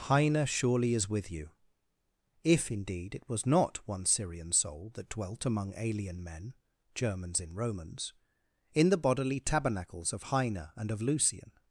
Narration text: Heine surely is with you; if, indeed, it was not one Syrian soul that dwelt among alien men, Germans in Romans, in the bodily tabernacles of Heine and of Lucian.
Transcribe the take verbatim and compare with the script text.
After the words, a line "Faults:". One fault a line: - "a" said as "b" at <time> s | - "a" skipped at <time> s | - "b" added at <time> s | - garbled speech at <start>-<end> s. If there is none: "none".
Heine surely is with you; if, indeed, it was not one Syrian soul that dwelt among alien men, Germans in Romans, in the bodily tabernacles of Heine and of Lucian.
Faults:
none